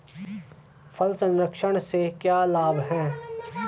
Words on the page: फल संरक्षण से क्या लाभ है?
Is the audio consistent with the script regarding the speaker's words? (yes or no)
yes